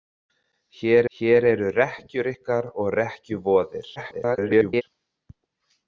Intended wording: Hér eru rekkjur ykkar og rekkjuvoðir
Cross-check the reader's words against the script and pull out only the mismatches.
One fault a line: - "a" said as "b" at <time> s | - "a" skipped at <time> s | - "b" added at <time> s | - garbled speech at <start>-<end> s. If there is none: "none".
- "hér" added at 1.2 s
- garbled speech at 4.0-4.8 s